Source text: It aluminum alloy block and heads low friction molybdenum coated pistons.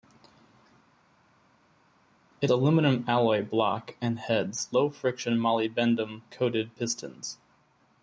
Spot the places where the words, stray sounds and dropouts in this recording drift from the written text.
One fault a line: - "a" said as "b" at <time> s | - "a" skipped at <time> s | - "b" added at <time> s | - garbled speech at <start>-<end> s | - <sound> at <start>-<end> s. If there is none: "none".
none